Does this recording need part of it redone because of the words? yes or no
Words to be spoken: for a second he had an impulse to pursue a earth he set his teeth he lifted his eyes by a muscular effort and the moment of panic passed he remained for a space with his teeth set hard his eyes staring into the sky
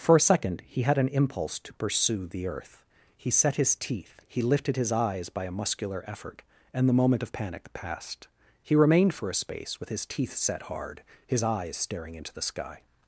yes